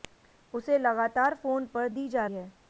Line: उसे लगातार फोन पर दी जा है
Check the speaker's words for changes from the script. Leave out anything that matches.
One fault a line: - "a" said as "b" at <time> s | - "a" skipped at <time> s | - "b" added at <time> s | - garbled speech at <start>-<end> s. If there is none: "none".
none